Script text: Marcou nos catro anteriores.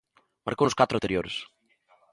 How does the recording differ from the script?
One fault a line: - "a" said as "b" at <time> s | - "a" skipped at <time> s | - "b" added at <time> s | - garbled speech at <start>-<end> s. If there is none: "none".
none